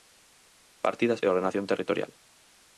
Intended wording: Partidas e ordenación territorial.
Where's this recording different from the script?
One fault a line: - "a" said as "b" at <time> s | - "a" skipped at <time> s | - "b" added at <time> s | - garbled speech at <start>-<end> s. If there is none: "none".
none